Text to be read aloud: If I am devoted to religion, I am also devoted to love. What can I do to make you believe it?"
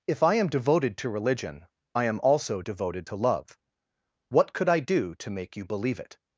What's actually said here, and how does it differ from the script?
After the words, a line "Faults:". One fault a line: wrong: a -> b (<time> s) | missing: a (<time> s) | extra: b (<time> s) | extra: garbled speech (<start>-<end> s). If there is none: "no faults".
If I am devoted to religion, I am also devoted to love. What could I do to make you believe it?"
Faults:
wrong: can -> could (4.5 s)